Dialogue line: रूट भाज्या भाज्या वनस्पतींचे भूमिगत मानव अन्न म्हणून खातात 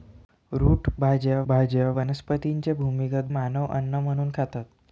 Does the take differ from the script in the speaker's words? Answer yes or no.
no